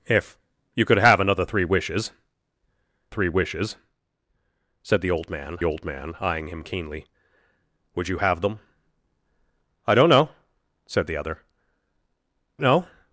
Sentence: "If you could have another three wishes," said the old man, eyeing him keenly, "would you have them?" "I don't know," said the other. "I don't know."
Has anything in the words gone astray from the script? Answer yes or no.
yes